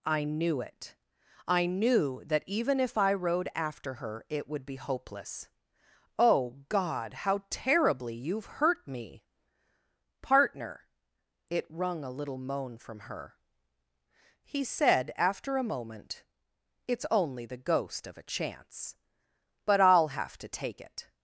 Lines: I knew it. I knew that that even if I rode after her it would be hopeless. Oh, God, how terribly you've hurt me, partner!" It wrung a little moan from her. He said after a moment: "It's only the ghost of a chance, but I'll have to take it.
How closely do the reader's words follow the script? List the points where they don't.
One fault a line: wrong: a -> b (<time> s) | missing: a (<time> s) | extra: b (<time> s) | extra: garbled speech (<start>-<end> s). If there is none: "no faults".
missing: that (2.4 s)